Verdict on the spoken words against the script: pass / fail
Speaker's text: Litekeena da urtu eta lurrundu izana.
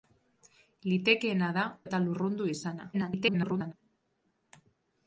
fail